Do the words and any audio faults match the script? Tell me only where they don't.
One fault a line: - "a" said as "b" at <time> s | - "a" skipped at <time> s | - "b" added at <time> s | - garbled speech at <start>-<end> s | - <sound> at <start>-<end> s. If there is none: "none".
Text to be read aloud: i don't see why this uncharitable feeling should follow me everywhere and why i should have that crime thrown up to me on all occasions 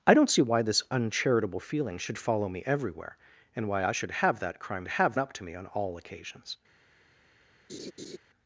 - "thrown" said as "have" at 4.9 s
- laugh at 7.7-8.2 s